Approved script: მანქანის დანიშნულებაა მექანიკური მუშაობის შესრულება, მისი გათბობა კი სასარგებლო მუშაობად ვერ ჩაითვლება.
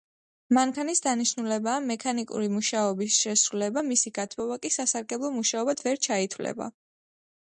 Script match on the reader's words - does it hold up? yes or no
yes